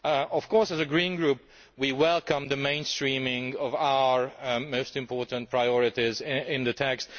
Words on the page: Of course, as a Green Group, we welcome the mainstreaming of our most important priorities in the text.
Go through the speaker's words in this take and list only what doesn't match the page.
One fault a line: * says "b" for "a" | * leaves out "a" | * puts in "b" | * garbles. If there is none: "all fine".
all fine